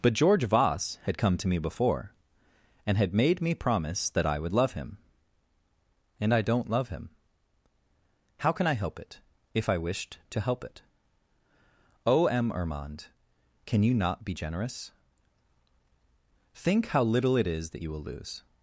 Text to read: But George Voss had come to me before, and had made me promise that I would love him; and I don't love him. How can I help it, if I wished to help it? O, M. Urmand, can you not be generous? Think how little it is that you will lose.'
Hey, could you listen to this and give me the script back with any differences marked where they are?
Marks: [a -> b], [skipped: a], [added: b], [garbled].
But George Voss had come to me before, and had made me promise that I would love him; and I don't love him. How can I help it, if I wished to help it? O, M. Urmand, can you not be generous? Think how little it is that you will lose.'